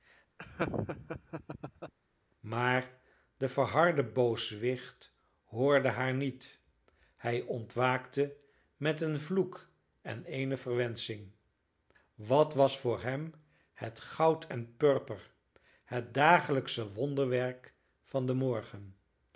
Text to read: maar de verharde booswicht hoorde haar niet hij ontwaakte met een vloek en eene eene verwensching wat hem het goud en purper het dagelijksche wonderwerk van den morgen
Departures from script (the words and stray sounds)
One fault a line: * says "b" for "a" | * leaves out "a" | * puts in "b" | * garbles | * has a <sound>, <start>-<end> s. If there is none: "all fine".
* has a laugh, 0.4-1.9 s
* leaves out "eene"
* puts in "was voor"